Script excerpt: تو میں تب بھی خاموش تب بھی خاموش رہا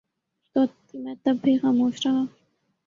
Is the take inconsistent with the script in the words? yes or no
yes